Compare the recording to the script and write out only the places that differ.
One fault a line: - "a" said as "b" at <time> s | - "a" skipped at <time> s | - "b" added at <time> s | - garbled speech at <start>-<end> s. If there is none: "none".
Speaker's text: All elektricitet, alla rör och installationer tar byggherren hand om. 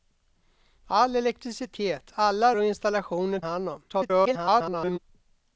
- "rör" skipped at 2.5 s
- "tar byggherren" skipped at 3.4 s
- garbled speech at 3.9-5.0 s